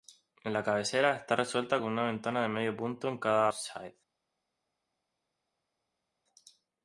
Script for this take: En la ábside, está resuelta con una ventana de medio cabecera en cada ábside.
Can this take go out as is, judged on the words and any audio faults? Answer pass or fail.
fail